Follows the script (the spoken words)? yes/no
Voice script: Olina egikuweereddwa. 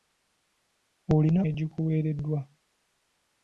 yes